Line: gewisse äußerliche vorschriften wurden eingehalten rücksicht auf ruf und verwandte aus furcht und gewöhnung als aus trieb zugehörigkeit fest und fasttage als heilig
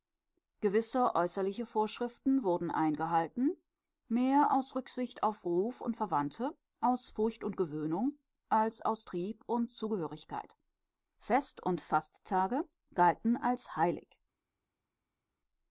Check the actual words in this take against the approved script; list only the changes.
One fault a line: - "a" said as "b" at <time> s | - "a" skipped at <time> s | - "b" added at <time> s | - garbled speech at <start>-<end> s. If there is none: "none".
- "mehr aus" added at 4.1 s
- "und" added at 9.5 s
- "galten" added at 12.9 s